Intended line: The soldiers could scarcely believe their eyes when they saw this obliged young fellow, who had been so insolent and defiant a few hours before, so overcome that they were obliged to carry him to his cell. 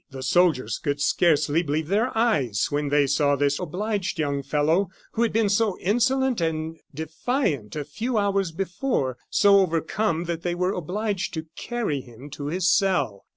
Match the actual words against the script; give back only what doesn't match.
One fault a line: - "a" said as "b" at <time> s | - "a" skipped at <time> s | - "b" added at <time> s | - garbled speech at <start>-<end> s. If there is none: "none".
none